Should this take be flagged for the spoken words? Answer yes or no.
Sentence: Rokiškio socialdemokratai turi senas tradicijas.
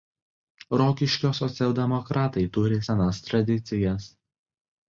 no